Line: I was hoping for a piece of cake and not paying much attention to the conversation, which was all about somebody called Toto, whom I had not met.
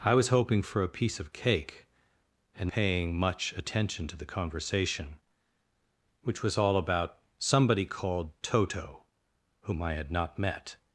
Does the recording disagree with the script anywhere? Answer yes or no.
yes